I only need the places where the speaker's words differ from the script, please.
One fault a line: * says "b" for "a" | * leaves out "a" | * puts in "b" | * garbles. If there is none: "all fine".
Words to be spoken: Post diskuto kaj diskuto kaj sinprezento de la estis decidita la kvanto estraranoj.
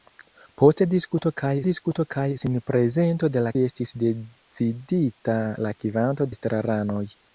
all fine